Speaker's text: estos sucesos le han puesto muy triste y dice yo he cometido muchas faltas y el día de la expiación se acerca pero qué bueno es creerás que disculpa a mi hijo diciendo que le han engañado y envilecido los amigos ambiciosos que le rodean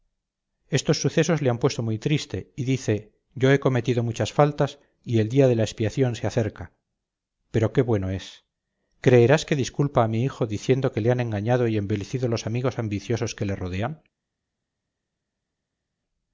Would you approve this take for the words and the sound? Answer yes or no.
yes